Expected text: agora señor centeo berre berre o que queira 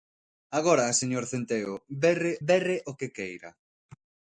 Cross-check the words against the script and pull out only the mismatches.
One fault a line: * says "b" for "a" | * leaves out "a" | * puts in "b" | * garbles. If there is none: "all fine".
all fine